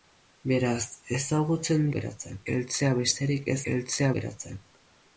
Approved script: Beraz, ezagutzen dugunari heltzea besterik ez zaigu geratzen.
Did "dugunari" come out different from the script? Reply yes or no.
yes